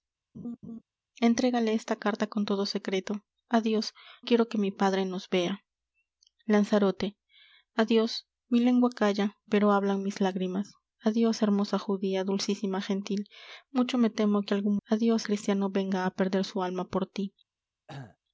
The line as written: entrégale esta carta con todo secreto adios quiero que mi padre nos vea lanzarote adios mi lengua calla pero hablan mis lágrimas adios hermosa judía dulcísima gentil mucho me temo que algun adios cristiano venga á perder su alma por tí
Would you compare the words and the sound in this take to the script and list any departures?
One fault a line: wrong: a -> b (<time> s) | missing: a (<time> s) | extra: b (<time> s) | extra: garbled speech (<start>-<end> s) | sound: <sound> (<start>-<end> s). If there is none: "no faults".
sound: laugh (0.3-0.8 s)
sound: cough (17.9-18.2 s)